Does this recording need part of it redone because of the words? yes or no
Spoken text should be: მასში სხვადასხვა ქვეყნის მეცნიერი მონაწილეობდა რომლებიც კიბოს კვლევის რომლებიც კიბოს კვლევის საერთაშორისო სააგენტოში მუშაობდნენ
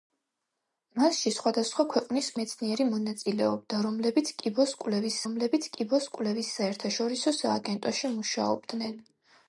no